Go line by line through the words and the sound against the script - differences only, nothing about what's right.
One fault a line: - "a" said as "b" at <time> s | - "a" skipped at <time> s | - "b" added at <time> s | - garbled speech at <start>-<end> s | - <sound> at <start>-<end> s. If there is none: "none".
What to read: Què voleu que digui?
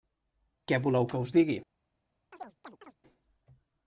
- "us" added at 1.2 s
- chirp at 2.3-3.0 s